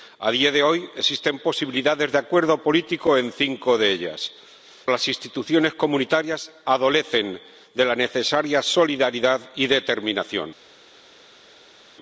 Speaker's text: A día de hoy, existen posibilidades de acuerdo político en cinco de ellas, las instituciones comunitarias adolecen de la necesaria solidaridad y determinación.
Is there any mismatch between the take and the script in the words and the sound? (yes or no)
no